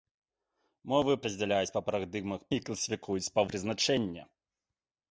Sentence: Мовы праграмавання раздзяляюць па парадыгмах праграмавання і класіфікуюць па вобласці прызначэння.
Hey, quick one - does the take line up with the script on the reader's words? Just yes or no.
no